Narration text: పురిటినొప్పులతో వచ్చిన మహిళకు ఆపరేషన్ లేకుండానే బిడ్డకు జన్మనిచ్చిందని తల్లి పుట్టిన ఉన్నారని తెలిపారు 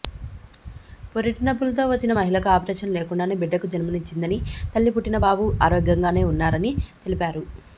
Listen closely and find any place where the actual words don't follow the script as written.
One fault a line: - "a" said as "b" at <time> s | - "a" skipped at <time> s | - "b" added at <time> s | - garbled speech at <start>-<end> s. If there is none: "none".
- "బాబు ఆరోగ్యంగానే" added at 5.3 s